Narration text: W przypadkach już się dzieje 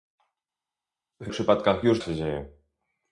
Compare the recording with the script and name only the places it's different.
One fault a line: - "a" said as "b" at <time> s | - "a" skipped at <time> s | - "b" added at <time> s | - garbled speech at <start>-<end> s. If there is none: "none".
none